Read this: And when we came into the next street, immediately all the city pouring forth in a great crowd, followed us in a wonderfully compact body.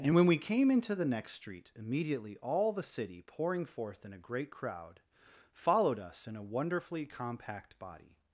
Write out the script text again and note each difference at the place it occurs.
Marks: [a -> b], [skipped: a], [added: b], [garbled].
And when we came into the next street, immediately all the city pouring forth in a great crowd, followed us in a wonderfully compact body.